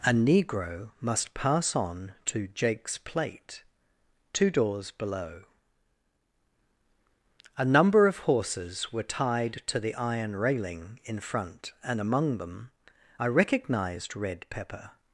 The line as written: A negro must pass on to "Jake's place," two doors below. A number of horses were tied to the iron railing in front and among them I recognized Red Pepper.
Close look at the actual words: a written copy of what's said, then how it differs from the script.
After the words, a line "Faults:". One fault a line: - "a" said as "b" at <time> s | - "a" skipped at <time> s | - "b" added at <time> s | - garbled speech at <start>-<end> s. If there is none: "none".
A negro must pass on to "Jake's plate," two doors below. A number of horses were tied to the iron railing in front and among them I recognized Red Pepper.
Faults:
- "place" said as "plate" at 3.0 s